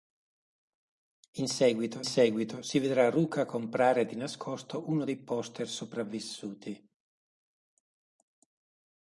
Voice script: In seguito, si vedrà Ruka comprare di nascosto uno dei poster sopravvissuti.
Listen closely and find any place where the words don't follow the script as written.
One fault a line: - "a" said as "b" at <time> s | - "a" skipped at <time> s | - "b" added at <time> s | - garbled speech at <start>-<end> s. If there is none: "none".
- "seguito" added at 2.0 s